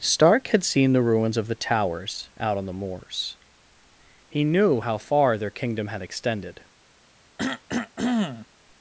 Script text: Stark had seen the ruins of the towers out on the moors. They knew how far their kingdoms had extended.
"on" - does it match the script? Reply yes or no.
yes